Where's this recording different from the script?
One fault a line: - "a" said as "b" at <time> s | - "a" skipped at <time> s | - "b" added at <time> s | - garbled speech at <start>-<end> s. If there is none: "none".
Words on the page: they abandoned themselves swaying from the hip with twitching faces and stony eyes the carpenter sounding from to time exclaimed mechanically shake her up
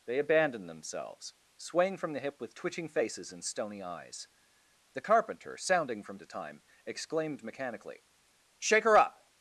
none